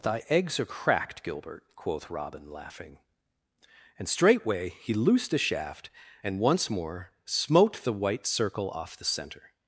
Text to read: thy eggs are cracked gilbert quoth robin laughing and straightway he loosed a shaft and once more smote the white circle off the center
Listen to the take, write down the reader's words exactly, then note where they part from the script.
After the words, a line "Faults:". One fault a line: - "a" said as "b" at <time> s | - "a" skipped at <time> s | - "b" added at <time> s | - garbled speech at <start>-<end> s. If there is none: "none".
thy eggs are cracked gilbert quoth robin laughing and straightway he loosed a shaft and once more smote the white circle off the center
Faults:
none